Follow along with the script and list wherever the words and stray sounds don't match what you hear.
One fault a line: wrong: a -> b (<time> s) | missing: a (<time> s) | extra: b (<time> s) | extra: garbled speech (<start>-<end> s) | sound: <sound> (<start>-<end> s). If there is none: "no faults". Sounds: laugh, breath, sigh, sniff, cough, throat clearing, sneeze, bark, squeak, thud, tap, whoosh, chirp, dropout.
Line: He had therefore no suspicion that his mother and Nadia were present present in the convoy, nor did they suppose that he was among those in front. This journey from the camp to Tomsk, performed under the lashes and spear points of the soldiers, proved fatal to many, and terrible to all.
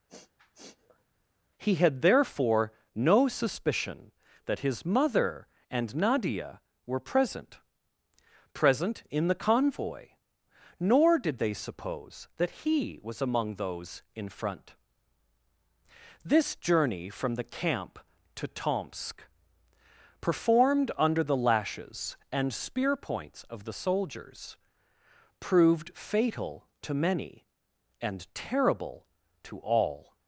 sound: sniff (0.1-1.0 s)